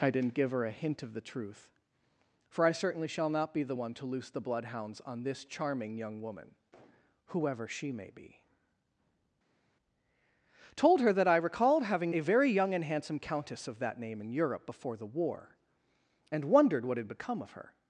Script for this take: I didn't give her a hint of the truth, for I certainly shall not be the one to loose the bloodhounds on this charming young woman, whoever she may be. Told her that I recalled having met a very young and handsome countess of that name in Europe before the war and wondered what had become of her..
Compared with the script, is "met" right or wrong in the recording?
wrong